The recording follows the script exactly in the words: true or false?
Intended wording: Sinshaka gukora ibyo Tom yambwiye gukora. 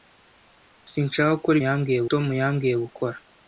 false